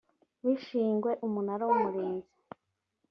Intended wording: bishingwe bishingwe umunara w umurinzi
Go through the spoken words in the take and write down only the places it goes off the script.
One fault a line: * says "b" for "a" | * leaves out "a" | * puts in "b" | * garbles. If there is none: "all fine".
* leaves out "bishingwe"